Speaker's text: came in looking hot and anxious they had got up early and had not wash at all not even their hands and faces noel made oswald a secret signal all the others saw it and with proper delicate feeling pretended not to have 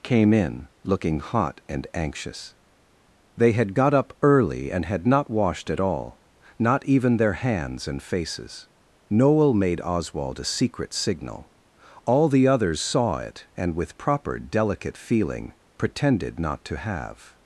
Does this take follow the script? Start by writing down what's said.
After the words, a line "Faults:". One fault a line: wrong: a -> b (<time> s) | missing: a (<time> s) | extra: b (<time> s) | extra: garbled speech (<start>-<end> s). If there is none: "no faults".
came in looking hot and anxious they had got up early and had not washed at all not even their hands and faces noel made oswald a secret signal all the others saw it and with proper delicate feeling pretended not to have
Faults:
wrong: wash -> washed (5.3 s)